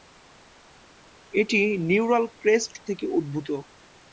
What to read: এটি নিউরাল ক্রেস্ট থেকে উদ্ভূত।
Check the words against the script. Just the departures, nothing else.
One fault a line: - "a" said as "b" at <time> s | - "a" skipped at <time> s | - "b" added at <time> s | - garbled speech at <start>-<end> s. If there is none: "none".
none